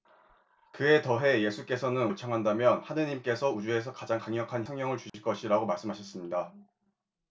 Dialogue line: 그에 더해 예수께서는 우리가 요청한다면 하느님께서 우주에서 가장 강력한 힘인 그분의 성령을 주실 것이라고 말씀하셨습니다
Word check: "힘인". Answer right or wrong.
wrong